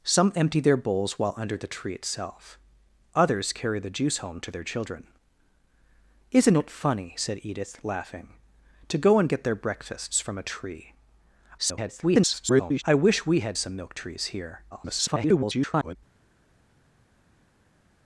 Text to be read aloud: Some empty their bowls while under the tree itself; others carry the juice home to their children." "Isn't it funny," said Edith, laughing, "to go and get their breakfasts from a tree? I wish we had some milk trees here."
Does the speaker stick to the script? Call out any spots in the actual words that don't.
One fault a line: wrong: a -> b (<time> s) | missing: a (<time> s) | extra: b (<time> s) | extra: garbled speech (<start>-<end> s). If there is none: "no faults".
extra: garbled speech (11.6-12.8 s)
extra: garbled speech (14.7-16.0 s)